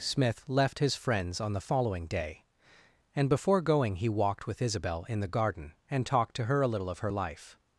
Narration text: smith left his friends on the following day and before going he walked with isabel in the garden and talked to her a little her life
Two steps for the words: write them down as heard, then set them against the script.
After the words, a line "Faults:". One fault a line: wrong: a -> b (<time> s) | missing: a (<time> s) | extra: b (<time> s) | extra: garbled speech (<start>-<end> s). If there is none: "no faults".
smith left his friends on the following day and before going he walked with isabel in the garden and talked to her a little of her life
Faults:
extra: of (6.9 s)